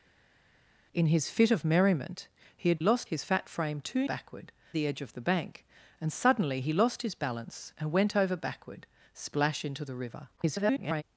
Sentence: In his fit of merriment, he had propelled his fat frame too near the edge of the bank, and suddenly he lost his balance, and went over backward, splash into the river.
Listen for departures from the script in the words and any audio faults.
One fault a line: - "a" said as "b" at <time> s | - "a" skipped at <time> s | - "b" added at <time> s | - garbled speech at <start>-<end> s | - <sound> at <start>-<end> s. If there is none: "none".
- "propelled" said as "lost" at 2.8 s
- "near" said as "backward" at 4.0 s
- garbled speech at 10.4-11.0 s